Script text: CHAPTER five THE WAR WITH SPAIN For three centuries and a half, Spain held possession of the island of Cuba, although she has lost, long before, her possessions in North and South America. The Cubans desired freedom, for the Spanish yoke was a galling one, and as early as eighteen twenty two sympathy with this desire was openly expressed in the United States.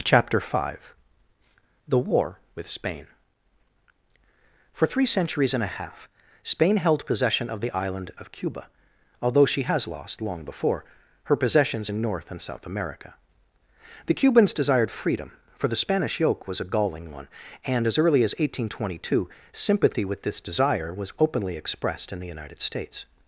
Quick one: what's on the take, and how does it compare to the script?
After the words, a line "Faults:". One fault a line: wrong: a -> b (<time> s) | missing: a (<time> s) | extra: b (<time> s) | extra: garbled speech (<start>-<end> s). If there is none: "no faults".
CHAPTER five THE WAR WITH SPAIN For three centuries and a half, Spain held possession of the island of Cuba, although she has lost, long before, her possessions in North and South America. The Cubans desired freedom, for the Spanish yoke was a galling one, and as early as eighteen twenty two sympathy with this desire was openly expressed in the United States.
Faults:
no faults